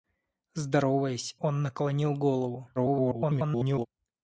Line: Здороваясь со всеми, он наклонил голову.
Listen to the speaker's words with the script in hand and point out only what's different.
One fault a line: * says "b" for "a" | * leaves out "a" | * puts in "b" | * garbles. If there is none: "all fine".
* leaves out "со всеми"
* garbles